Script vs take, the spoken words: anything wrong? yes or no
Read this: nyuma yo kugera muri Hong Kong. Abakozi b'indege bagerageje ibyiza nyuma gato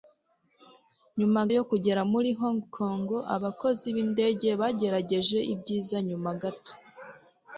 no